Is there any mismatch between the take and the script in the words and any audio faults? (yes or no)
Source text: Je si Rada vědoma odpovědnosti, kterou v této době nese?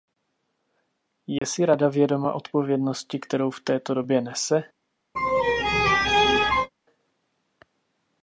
yes